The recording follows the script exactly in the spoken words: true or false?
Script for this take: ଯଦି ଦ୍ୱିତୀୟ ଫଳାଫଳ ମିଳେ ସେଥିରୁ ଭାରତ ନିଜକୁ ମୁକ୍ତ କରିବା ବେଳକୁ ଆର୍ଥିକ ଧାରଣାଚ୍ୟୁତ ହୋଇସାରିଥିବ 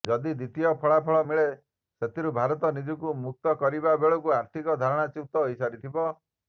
true